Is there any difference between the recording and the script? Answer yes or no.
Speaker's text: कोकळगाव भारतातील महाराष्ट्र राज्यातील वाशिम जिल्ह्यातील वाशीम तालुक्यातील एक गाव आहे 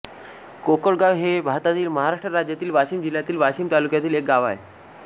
yes